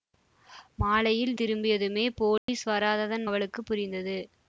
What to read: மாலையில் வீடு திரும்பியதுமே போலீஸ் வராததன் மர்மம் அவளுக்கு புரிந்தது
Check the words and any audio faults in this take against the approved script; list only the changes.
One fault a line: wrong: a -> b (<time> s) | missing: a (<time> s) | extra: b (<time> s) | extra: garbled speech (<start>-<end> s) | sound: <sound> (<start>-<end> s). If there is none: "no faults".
missing: வீடு (1.3 s)
sound: dropout (2.4-2.5 s)
missing: மர்மம் (3.3 s)